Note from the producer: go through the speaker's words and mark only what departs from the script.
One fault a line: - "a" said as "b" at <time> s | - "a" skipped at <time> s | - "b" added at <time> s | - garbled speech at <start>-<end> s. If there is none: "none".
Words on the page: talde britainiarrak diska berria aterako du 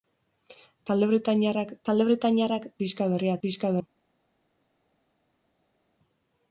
- "talde britainiarrak" added at 1.9 s
- "aterako" said as "diska" at 3.5 s